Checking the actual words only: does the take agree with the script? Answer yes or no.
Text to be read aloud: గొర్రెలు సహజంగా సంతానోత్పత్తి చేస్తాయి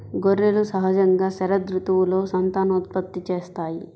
no